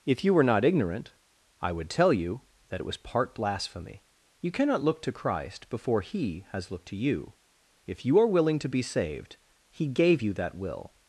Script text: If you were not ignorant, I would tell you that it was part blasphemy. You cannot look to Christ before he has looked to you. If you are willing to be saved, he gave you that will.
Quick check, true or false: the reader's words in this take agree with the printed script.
true